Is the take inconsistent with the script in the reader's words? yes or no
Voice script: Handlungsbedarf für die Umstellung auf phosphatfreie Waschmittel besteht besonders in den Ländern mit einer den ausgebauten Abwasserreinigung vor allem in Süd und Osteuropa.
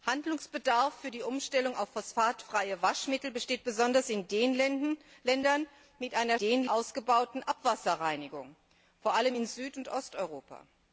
no